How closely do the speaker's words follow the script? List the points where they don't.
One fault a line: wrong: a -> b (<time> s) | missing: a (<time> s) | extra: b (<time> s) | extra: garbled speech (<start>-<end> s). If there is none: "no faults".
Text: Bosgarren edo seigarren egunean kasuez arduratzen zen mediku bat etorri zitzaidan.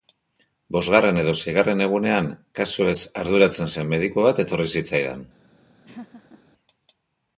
no faults